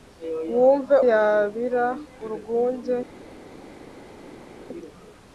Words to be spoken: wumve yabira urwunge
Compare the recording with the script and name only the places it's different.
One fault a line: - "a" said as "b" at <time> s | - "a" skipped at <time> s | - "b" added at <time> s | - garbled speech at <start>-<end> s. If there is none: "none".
none